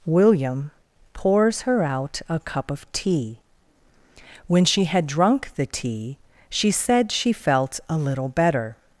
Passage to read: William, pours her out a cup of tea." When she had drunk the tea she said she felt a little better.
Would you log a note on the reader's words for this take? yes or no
no